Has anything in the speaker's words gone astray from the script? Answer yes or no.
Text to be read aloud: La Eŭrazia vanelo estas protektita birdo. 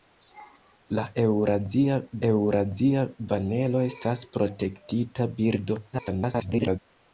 yes